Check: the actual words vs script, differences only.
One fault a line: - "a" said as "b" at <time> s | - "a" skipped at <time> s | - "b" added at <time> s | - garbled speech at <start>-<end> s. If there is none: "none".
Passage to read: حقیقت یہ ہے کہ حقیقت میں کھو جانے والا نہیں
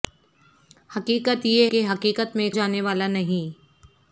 - "ہے" skipped at 1.7 s
- "کھو" skipped at 2.5 s